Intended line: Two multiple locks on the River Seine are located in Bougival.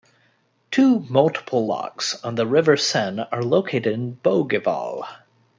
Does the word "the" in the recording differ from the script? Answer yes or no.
no